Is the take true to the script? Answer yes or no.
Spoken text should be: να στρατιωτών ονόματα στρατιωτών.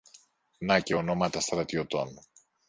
no